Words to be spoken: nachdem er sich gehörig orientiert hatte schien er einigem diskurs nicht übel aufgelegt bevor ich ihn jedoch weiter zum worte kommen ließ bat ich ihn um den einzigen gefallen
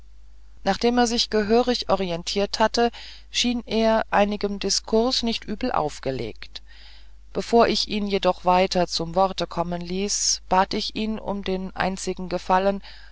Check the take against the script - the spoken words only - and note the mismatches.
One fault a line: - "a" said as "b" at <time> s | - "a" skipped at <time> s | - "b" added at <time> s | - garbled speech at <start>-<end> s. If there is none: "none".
none